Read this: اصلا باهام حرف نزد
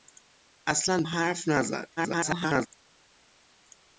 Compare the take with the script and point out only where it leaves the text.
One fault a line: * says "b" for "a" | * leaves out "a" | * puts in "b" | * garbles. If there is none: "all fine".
* leaves out "باهام"
* garbles